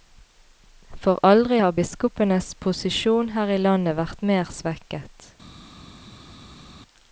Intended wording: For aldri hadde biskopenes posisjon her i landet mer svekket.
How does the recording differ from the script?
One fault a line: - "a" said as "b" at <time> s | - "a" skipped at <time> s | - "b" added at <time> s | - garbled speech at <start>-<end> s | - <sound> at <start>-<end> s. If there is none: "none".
- "hadde" said as "har" at 1.6 s
- "vært" added at 4.0 s